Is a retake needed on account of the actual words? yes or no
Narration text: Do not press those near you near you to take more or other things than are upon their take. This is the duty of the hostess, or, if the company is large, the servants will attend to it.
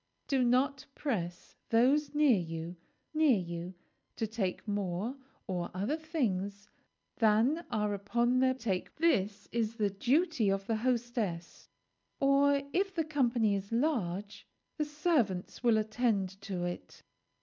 no